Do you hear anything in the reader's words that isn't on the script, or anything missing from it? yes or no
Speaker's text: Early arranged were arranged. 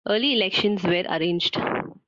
yes